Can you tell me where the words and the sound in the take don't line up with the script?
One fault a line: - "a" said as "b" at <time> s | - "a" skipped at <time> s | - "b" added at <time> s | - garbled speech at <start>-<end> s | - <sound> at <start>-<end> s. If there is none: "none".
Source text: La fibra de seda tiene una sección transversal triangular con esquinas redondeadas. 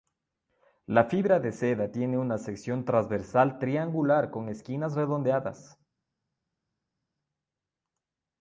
none